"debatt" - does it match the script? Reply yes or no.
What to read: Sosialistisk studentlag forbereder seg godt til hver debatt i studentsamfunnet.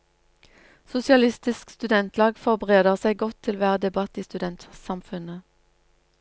yes